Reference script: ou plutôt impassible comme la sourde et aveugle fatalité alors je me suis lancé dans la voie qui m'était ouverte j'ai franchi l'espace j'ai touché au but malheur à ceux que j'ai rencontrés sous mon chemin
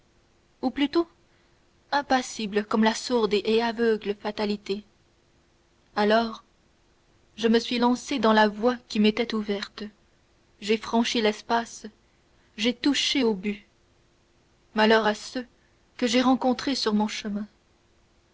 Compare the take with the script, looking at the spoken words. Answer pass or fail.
fail